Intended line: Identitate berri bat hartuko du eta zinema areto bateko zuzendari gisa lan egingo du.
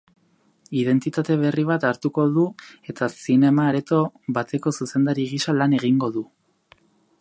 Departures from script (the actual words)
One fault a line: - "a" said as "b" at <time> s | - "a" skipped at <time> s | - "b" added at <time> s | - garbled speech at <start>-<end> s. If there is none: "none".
none